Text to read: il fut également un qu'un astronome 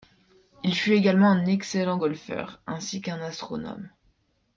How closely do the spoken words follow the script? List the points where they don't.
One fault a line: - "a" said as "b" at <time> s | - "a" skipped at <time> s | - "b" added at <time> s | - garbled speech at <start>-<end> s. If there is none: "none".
- "excellent golfeur ainsi" added at 1.4 s